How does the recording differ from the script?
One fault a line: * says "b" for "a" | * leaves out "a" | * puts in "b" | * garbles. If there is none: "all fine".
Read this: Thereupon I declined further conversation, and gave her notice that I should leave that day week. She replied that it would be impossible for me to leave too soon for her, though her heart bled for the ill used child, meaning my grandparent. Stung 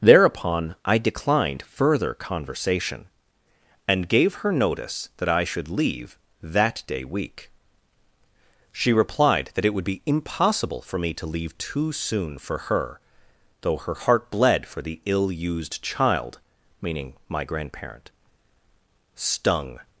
all fine